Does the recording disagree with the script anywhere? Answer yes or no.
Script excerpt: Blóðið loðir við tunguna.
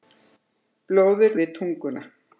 yes